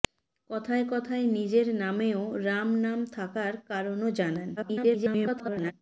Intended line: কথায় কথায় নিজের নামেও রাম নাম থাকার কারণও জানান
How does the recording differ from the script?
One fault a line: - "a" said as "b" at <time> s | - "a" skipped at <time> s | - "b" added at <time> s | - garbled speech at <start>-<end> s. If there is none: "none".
- garbled speech at 4.6-5.7 s